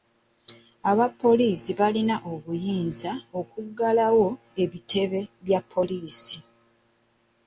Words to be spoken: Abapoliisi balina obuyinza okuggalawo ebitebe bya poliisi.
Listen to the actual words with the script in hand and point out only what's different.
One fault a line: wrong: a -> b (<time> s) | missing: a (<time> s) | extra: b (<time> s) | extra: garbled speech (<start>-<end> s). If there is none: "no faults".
no faults